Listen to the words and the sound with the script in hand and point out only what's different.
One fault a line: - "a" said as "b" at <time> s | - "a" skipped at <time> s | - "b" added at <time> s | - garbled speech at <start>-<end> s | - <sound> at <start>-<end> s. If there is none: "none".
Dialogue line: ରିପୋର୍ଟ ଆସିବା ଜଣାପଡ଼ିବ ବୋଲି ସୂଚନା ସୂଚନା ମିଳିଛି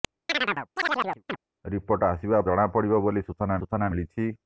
- chirp at 0.3-1.4 s